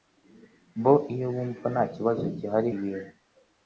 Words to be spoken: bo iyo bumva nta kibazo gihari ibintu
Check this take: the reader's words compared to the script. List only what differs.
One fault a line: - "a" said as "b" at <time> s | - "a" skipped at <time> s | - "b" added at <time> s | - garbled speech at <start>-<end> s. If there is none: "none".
none